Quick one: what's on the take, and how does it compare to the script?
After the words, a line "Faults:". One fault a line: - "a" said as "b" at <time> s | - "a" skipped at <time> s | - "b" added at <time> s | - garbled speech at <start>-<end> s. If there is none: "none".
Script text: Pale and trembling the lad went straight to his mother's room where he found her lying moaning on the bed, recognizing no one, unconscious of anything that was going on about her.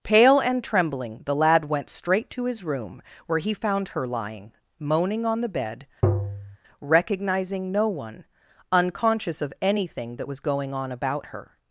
Pale and trembling the lad went straight to his room where he found her lying moaning on the bed, recognizing no one, unconscious of anything that was going on about her.
Faults:
- "mother's" skipped at 2.6 s